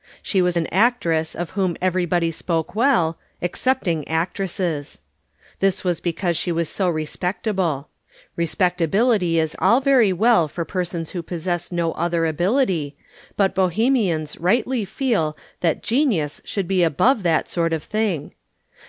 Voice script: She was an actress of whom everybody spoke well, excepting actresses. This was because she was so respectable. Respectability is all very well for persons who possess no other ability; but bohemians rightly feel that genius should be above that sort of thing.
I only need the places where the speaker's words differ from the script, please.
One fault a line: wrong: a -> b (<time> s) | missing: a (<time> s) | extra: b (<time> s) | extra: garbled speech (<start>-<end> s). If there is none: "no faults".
no faults